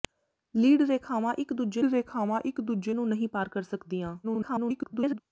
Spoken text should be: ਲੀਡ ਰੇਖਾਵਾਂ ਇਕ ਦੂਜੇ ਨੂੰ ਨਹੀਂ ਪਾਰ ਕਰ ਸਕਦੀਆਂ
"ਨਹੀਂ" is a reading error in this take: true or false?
false